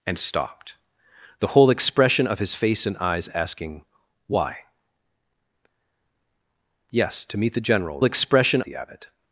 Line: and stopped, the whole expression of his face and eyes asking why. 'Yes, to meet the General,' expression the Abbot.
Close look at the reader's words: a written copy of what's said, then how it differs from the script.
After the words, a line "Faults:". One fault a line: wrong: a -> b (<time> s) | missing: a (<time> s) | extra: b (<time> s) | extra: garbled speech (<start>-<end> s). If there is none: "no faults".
and stopped, the whole expression of his face and eyes asking why. 'Yes, to meet the General,' expression the Abbot.
Faults:
no faults